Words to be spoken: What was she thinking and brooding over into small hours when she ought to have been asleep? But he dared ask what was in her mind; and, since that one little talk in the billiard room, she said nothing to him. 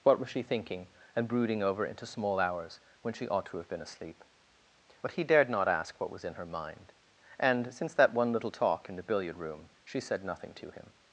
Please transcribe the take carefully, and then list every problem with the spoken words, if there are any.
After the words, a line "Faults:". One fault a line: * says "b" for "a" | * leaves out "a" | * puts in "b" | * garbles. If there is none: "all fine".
What was she thinking and brooding over into small hours when she ought to have been asleep? But he dared not ask what was in her mind; and, since that one little talk in the billiard room, she said nothing to him.
Faults:
* puts in "not"